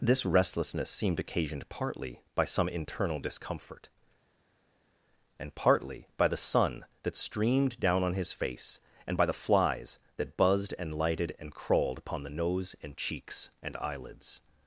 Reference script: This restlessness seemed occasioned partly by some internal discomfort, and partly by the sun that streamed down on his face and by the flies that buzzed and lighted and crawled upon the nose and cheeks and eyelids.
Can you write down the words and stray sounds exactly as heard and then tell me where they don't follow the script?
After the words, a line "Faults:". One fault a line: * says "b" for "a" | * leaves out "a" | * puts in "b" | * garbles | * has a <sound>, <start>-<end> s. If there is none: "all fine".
This restlessness seemed occasioned partly by some internal discomfort, and partly by the sun that streamed down on his face and by the flies that buzzed and lighted and crawled upon the nose and cheeks and eyelids.
Faults:
all fine